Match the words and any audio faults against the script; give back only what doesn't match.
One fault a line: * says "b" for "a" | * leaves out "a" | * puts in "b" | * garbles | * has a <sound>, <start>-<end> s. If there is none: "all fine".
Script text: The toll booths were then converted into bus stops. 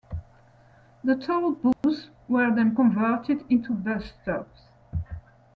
* has a dropout, 1.7-1.8 s